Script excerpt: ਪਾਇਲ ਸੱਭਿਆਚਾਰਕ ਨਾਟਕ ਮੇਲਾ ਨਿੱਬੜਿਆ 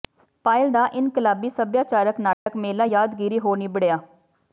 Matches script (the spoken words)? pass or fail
fail